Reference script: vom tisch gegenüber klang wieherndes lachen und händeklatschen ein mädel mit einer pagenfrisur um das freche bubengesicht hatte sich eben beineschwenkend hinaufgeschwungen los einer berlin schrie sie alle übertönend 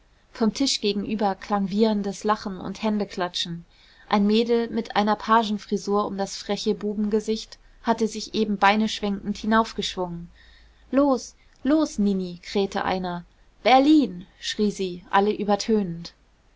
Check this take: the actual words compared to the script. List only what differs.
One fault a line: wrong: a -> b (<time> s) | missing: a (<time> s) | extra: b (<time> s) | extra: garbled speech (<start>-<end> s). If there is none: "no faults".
extra: los nini krähte (11.6 s)